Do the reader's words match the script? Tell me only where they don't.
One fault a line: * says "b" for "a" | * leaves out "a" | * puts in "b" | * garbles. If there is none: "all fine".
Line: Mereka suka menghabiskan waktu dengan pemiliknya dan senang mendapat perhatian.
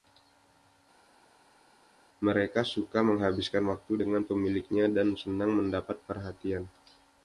all fine